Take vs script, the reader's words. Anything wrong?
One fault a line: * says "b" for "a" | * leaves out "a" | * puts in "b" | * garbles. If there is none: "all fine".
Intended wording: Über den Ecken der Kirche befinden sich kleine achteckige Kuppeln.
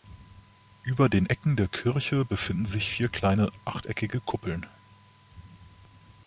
* puts in "vier"